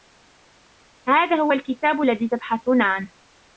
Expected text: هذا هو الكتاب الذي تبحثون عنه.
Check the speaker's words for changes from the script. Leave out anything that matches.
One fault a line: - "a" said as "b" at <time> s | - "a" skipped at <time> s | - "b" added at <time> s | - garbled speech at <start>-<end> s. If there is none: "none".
none